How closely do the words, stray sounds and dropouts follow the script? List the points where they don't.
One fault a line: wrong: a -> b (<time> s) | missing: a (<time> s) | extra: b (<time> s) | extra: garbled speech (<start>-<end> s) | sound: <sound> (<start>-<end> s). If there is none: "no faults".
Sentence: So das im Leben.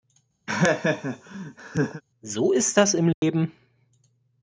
sound: laugh (0.5-2.0 s)
extra: ist (2.5 s)
sound: dropout (3.1-3.2 s)